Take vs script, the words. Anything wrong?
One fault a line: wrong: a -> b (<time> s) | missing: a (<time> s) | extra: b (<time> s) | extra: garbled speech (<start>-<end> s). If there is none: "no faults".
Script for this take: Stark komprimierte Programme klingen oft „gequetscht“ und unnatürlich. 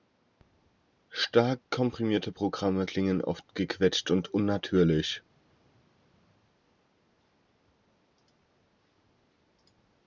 no faults